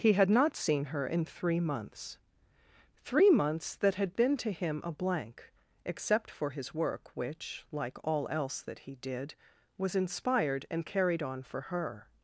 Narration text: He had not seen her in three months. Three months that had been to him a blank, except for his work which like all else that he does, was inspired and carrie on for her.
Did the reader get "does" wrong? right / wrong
wrong